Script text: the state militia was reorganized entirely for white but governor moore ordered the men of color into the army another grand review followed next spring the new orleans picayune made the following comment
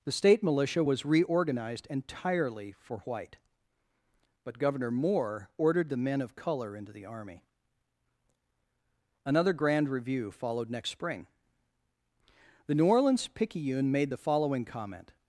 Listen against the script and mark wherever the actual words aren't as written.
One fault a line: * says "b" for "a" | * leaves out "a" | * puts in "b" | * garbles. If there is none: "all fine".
all fine